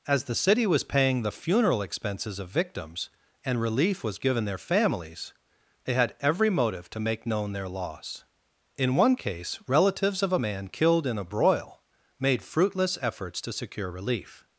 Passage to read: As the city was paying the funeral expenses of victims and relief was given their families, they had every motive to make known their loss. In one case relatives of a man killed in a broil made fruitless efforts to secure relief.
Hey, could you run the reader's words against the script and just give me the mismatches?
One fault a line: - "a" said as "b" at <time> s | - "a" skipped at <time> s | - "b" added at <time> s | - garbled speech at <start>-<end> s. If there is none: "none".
none